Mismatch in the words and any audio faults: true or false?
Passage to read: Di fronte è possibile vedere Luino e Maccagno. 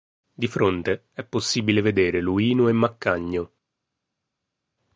false